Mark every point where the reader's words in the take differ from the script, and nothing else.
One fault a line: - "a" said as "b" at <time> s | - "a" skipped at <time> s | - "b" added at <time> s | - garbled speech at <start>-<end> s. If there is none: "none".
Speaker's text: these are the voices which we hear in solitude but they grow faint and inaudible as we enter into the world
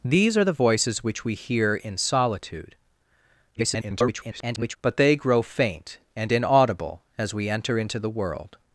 - garbled speech at 3.5-4.8 s